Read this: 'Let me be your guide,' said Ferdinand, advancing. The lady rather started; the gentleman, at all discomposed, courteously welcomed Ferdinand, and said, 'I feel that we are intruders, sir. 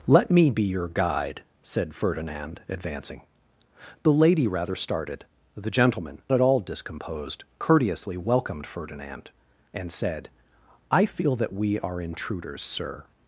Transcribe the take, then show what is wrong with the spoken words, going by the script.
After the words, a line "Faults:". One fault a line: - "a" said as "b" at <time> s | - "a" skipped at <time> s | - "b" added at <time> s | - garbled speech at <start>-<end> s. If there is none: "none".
'Let me be your guide,' said Ferdinand, advancing. The lady rather started; the gentleman, at all discomposed, courteously welcomed Ferdinand, and said, 'I feel that we are intruders, sir.
Faults:
none